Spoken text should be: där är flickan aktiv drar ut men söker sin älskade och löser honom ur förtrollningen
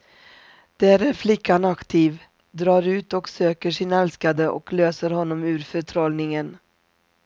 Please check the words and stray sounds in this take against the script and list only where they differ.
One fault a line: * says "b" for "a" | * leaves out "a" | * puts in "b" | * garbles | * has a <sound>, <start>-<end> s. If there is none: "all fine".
* says "och" for "men"